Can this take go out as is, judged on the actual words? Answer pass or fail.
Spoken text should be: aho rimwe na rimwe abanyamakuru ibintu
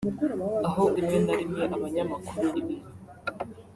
pass